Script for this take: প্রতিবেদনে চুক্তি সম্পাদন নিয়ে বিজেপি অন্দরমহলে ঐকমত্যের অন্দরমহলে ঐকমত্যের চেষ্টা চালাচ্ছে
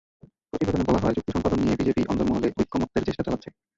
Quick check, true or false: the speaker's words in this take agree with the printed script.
false